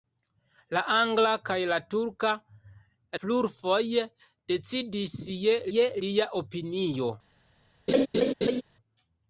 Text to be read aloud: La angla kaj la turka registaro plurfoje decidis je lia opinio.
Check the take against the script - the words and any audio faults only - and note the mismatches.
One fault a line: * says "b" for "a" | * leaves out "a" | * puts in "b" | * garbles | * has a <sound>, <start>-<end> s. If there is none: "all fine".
* leaves out "registaro"
* puts in "je"
* has a laugh, 7.9-8.6 s